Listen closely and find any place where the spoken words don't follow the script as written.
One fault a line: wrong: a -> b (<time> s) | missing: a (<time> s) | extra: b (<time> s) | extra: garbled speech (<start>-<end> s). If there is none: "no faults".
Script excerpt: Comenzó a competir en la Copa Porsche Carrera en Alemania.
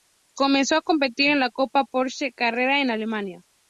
no faults